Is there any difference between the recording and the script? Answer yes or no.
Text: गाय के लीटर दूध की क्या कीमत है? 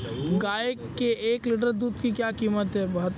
yes